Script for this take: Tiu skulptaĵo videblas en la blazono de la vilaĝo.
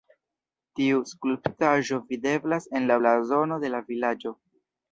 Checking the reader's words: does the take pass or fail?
pass